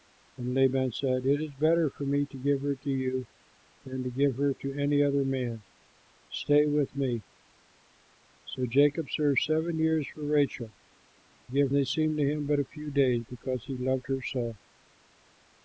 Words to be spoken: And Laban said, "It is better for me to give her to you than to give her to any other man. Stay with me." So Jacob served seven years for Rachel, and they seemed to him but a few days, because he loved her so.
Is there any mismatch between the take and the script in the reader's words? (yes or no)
yes